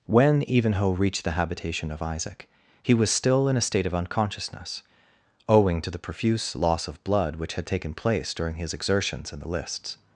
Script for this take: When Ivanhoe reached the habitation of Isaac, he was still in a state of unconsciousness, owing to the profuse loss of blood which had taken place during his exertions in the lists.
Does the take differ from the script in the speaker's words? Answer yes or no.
no